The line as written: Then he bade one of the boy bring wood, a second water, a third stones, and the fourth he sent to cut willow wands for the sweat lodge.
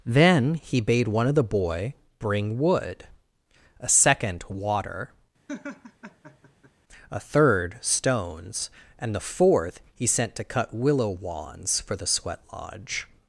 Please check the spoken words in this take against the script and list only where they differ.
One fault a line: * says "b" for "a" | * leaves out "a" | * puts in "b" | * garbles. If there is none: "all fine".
all fine